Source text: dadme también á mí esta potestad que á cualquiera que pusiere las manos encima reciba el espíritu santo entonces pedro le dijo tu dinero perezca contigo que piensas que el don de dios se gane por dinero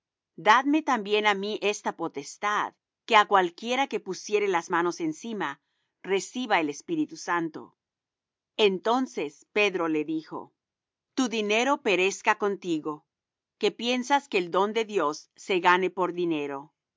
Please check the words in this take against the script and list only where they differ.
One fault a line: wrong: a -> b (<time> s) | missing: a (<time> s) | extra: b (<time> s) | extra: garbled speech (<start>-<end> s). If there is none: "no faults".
no faults